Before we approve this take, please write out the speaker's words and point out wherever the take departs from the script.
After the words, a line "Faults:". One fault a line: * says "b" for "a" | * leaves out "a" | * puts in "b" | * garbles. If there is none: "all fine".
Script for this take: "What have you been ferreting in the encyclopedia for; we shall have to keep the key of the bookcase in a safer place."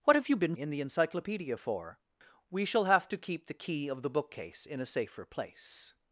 "What have you been in the encyclopedia for; we shall have to keep the key of the bookcase in a safer place."
Faults:
* leaves out "ferreting"